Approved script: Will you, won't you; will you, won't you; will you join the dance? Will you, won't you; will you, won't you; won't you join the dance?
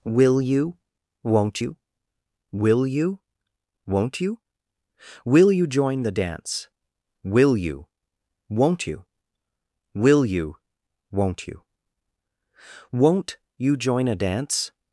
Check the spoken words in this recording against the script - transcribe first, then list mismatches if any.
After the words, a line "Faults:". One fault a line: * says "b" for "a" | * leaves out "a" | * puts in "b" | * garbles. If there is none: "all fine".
Will you, won't you; will you, won't you; will you join the dance? Will you, won't you; will you, won't you; won't you join a dance?
Faults:
* says "a" for "the"